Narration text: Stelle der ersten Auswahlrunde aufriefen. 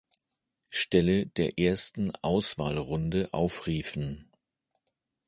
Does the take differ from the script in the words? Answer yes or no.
no